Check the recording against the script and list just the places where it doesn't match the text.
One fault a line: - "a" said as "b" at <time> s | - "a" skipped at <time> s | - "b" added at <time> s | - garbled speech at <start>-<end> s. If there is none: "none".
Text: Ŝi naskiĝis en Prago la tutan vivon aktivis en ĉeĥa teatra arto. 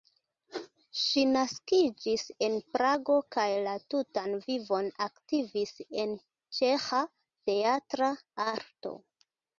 - "kaj" added at 3.3 s